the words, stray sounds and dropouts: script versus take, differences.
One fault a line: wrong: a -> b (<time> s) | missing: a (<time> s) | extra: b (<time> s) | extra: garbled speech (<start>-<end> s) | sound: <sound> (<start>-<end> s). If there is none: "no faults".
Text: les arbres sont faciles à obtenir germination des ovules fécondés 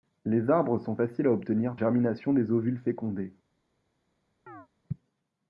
sound: chirp (4.5-4.7 s)